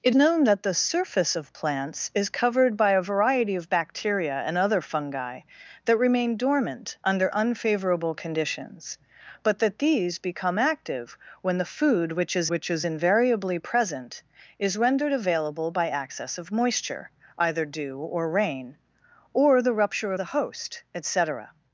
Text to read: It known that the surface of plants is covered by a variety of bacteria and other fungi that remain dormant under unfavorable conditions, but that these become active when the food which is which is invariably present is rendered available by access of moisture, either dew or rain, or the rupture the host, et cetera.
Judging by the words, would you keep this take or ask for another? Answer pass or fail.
pass